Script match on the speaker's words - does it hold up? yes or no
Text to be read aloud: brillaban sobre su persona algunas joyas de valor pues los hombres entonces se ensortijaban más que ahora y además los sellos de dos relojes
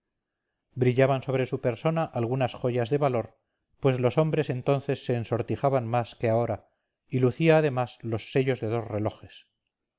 no